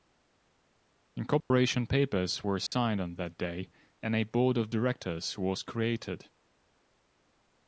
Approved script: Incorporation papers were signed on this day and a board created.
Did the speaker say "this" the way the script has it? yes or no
no